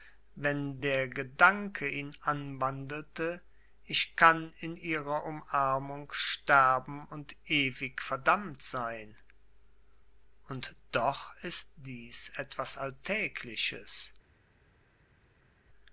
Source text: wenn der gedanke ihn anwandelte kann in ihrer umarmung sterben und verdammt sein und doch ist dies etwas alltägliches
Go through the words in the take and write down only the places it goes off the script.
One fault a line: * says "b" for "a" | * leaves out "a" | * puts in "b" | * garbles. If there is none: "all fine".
* puts in "ich"
* puts in "ewig"